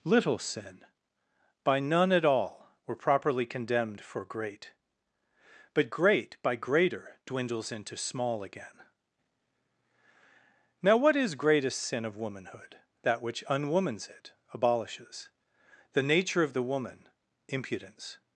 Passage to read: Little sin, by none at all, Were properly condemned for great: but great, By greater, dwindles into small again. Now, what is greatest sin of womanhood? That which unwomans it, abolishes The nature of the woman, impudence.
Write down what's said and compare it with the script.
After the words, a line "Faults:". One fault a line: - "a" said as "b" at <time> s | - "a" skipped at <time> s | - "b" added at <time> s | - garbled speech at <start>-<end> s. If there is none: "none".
Little sin, by none at all, Were properly condemned for great: but great, By greater, dwindles into small again. Now, what is greatest sin of womanhood? That which unwomans it, abolishes The nature of the woman, impudence.
Faults:
none